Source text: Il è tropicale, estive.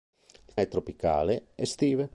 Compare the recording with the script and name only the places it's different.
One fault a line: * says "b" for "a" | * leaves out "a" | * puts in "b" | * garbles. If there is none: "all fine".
all fine